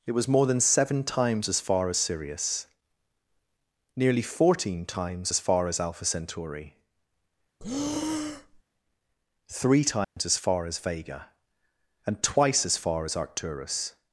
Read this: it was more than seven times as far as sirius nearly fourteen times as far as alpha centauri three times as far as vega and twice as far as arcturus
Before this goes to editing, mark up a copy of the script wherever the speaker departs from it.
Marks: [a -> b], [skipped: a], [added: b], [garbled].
it was more than seven times as far as sirius nearly fourteen times as far as alpha centauri three times as far as vega and twice as far as arcturus